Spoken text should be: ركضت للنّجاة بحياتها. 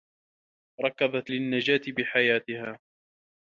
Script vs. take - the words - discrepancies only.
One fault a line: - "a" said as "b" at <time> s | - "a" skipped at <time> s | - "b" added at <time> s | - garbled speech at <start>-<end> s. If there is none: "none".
none